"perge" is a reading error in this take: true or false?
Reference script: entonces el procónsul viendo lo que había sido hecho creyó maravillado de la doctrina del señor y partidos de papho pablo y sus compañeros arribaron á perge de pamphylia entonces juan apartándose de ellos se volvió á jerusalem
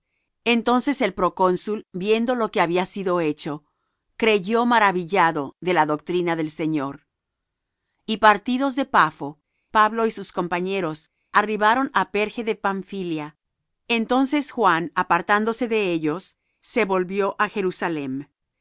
false